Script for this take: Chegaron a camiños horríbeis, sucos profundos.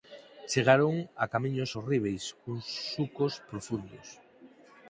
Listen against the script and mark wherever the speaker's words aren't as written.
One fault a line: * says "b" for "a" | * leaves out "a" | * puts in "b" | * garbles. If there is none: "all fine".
* puts in "cuns"